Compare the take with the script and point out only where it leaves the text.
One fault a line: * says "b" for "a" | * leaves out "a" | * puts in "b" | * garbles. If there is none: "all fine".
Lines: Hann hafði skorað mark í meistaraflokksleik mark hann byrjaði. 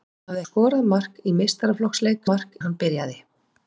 all fine